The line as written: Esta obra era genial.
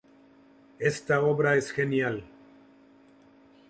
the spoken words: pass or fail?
fail